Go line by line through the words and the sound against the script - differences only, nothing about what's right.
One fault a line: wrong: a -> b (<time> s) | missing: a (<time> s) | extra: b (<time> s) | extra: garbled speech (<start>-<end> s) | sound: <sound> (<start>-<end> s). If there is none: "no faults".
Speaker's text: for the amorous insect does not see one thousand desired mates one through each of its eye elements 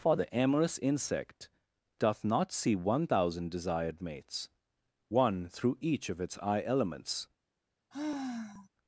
wrong: does -> doth (2.0 s)
sound: sigh (7.9-8.7 s)